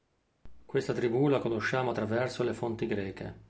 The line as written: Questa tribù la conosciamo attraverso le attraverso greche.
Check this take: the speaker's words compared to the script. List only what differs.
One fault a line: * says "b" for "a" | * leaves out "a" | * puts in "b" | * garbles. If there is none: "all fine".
* says "fonti" for "attraverso"